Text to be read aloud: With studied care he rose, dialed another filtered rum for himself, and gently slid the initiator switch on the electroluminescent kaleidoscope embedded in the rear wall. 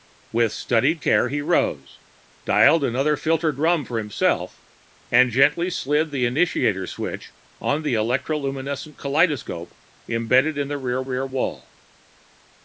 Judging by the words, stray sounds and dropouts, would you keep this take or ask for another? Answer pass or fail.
fail